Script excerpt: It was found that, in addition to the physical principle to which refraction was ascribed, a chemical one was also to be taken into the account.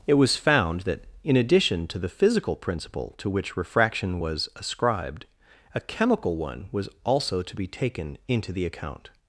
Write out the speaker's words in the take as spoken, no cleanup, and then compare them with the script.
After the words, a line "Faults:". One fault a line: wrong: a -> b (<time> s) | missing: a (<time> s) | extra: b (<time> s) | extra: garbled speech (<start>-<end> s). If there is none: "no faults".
It was found that, in addition to the physical principle to which refraction was ascribed, a chemical one was also to be taken into the account.
Faults:
no faults